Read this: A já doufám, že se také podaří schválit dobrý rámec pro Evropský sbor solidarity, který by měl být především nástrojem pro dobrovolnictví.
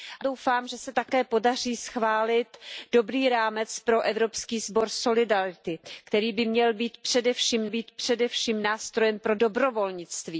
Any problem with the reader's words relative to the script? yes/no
yes